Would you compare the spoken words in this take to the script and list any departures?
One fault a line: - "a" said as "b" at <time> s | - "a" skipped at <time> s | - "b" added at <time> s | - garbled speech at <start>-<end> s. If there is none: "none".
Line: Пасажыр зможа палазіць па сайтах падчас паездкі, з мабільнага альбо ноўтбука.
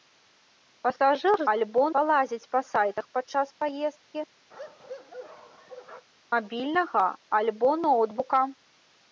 - "зможа" said as "альбо" at 1.5 s
- "з" skipped at 4.2 s